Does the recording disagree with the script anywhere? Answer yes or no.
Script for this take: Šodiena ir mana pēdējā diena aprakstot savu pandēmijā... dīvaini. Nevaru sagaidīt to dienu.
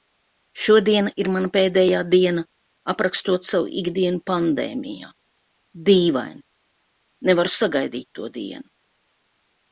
yes